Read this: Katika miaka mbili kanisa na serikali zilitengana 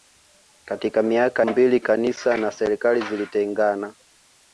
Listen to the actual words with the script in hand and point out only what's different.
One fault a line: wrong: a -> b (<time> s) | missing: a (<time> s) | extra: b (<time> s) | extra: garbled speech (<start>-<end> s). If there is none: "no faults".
no faults